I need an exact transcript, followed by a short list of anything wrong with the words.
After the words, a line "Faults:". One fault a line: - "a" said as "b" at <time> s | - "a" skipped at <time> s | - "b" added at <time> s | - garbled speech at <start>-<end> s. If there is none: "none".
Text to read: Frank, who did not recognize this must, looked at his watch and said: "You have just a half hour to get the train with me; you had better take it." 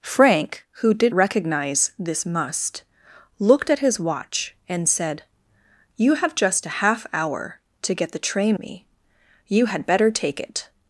Frank, who did recognize this must, looked at his watch and said: "You have just a half hour to get the train me; you had better take it."
Faults:
- "not" skipped at 1.1 s
- "with" skipped at 8.6 s